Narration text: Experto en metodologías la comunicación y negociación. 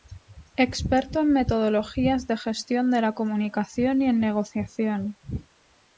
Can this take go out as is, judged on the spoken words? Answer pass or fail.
fail